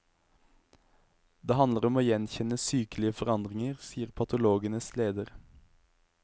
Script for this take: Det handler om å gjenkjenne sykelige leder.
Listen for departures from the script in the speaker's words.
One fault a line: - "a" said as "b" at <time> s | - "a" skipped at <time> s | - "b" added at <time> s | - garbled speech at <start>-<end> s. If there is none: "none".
- "forandringer sier patologenes" added at 3.2 s